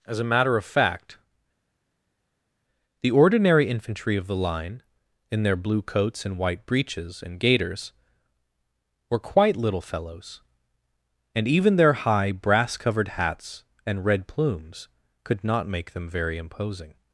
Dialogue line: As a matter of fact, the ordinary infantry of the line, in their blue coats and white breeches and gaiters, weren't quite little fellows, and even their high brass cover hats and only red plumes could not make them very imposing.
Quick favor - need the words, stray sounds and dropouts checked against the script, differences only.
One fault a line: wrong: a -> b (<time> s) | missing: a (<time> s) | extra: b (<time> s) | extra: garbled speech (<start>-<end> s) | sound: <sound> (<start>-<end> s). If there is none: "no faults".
wrong: weren't -> were (9.1 s)
wrong: cover -> covered (12.8 s)
missing: only (14.0 s)